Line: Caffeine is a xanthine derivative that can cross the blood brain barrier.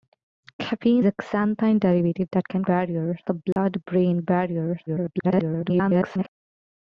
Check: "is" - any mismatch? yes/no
yes